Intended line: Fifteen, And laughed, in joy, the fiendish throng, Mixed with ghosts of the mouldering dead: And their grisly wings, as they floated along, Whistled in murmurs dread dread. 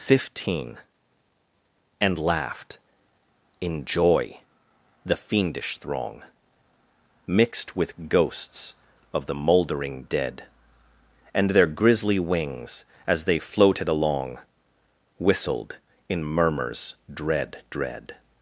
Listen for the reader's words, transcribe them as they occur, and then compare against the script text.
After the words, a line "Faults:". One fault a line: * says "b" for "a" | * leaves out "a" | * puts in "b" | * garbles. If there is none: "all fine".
Fifteen, And laughed, in joy, the fiendish throng, Mixed with ghosts of the mouldering dead: And their grisly wings, as they floated along, Whistled in murmurs dread dread.
Faults:
all fine